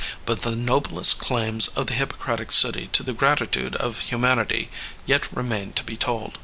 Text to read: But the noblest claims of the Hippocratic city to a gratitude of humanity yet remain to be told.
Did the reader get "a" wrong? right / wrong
wrong